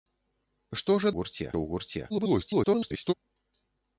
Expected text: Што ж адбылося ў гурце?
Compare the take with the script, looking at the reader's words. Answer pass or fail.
fail